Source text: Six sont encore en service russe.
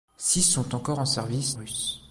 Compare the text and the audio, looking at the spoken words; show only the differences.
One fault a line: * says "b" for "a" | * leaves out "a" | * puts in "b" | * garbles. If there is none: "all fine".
all fine